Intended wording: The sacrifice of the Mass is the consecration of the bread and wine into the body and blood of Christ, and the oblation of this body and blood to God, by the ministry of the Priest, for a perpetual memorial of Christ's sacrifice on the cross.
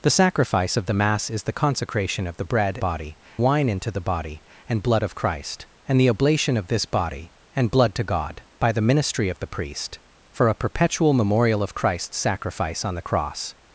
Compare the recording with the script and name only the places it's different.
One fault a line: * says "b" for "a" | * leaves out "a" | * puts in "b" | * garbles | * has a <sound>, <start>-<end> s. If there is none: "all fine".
* says "body" for "and"